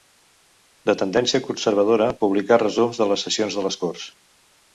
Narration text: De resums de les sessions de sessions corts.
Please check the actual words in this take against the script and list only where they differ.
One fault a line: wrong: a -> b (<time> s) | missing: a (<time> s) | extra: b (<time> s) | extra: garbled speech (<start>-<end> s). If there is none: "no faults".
extra: tendència conservadora publicà (1.0 s)
wrong: sessions -> les (3.7 s)